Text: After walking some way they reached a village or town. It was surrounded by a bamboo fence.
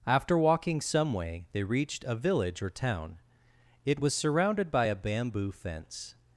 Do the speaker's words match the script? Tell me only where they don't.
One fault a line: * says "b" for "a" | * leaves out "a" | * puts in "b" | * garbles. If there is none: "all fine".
all fine